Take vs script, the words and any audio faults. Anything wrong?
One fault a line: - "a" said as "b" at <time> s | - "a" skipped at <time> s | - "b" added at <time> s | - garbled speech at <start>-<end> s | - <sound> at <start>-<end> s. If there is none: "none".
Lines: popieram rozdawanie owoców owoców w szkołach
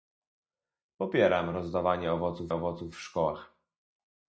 none